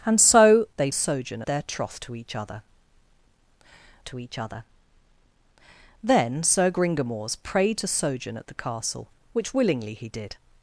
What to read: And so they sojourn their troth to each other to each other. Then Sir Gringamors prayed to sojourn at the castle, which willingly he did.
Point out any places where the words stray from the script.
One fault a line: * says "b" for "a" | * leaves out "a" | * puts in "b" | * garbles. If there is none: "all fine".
all fine